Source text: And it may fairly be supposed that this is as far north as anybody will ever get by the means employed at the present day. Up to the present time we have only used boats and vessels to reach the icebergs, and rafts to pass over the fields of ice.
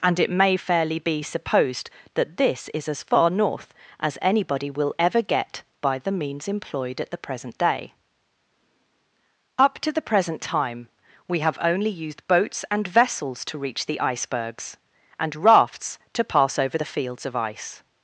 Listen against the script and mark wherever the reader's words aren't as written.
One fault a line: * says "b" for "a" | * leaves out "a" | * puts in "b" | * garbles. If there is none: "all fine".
all fine